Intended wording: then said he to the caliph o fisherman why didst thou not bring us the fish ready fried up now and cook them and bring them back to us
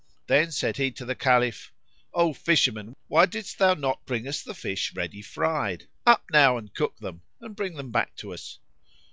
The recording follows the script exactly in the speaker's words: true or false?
true